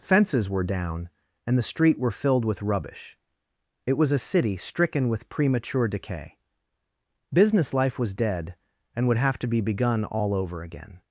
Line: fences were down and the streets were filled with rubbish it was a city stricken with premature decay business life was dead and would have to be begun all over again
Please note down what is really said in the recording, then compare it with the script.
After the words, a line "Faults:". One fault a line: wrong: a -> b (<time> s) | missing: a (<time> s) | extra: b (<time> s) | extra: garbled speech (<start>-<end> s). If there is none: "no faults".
fences were down and the street were filled with rubbish it was a city stricken with premature decay business life was dead and would have to be begun all over again
Faults:
wrong: streets -> street (1.6 s)